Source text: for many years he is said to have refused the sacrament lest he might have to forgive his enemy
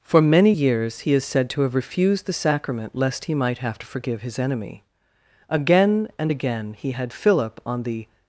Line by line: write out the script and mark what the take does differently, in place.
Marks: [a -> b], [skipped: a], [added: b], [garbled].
for many years he is said to have refused the sacrament lest he might have to forgive his enemy [added: again and again he had philip on the]